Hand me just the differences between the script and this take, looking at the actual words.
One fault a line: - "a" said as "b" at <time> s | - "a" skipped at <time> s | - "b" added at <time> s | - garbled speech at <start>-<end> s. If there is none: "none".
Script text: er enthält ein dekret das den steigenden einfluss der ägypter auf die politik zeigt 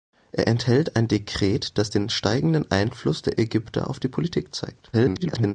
- garbled speech at 4.9-5.5 s